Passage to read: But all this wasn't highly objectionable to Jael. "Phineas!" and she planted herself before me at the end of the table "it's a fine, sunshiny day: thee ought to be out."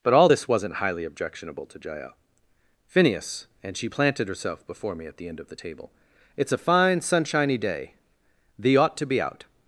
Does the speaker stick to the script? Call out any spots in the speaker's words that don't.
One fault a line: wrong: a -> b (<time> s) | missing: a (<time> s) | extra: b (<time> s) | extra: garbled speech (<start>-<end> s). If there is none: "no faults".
no faults